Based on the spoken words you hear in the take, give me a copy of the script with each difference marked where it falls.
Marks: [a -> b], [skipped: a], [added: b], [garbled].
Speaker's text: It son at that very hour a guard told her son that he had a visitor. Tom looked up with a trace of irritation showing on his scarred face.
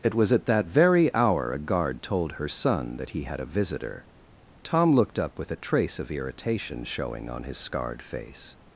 It [son -> was] at that very hour a guard told her son that he had a visitor. Tom looked up with a trace of irritation showing on his scarred face.